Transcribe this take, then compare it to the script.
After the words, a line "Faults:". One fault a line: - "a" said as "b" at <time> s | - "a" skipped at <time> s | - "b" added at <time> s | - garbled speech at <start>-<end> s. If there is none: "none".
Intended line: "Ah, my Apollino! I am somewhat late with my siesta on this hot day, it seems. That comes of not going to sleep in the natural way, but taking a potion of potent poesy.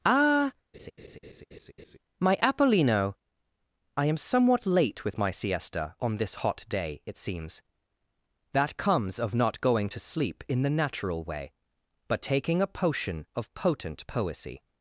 "Ah, my Apollino! I am somewhat late with my siesta on this hot day, it seems. That comes of not going to sleep in the natural way, but taking a potion of potent poesy.
Faults:
none